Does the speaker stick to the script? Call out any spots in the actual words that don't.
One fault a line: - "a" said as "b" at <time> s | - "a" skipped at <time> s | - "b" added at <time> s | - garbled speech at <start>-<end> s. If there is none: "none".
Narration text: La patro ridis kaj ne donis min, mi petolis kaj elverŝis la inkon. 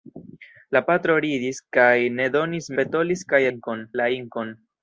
- "min mi" skipped at 2.7 s
- "elverŝis" said as "inkon" at 3.5 s